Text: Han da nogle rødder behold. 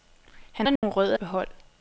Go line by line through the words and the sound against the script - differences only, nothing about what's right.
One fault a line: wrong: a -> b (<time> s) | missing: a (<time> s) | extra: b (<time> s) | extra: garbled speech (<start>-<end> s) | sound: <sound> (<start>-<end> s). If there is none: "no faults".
sound: dropout (0.8-0.8 s)